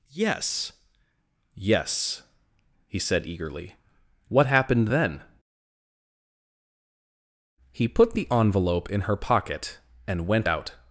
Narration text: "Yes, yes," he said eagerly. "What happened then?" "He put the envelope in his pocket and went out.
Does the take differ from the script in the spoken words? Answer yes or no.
yes